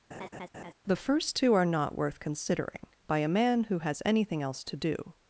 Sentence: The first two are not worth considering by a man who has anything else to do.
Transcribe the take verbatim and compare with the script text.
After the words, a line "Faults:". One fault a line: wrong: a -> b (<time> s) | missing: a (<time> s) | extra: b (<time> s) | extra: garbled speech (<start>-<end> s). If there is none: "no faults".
The first two are not worth considering by a man who has anything else to do.
Faults:
no faults